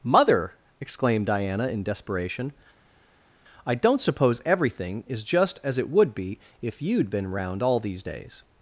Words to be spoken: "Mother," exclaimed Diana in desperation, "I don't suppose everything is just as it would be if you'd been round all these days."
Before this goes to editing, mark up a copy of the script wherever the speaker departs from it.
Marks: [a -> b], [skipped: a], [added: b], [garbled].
"Mother," exclaimed Diana in desperation, "I don't suppose everything is just as it would be if you'd been round all these days."